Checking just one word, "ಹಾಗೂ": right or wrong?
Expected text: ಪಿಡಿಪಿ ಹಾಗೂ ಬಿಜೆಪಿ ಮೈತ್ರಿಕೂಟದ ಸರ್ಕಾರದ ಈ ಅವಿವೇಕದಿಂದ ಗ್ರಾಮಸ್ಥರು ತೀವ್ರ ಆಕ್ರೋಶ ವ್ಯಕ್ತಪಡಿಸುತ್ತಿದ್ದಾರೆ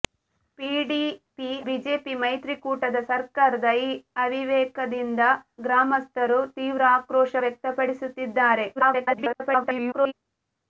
wrong